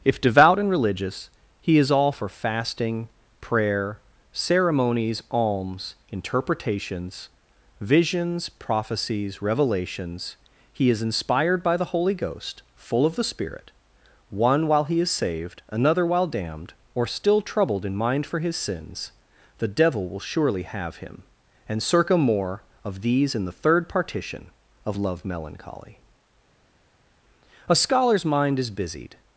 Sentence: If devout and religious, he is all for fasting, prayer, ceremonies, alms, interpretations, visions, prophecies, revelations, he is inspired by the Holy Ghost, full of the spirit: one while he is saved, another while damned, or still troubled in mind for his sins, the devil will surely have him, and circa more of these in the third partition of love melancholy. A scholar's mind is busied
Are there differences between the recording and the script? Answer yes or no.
no